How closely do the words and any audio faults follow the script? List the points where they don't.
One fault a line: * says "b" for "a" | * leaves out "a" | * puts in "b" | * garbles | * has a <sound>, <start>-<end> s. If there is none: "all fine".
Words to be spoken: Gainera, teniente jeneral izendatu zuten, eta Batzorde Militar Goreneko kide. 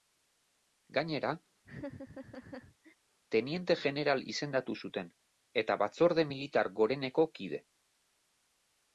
* has a laugh, 1.6-3.0 s